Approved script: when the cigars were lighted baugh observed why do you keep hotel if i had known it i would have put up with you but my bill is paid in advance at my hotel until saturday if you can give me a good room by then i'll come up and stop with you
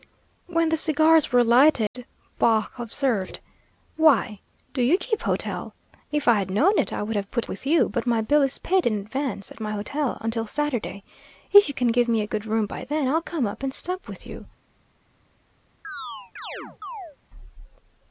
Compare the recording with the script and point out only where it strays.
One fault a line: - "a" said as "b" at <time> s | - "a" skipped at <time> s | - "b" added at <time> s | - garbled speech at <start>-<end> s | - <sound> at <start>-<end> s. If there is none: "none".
- dropout at 1.9-1.9 s
- "up" skipped at 7.5 s
- chirp at 15.8-17.2 s